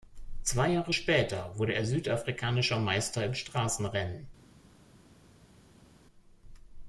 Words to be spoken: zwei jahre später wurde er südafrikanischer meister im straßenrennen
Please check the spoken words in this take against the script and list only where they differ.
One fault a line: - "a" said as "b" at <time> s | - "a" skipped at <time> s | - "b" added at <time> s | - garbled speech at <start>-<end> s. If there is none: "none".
none